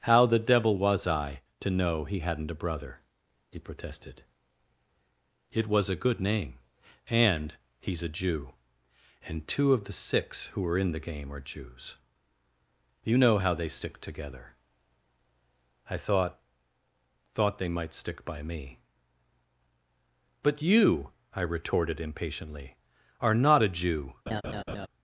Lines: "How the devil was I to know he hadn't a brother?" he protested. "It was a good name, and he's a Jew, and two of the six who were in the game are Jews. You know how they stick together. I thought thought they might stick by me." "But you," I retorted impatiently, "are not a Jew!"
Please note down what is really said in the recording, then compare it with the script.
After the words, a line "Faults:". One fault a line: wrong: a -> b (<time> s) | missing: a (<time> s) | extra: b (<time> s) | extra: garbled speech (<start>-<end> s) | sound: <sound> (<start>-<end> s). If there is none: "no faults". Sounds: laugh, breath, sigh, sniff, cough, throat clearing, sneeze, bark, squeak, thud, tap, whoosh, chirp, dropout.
"How the devil was I to know he hadn't a brother?" he protested. "It was a good name, and he's a Jew, and two of the six who were in the game are Jews. You know how they stick together. I thought thought they might stick by me." "But you," I retorted impatiently, "are not a Jew!"
Faults:
sound: laugh (24.3-24.9 s)